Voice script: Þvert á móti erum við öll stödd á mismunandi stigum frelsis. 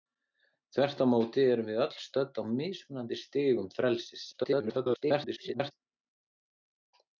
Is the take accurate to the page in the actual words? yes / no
no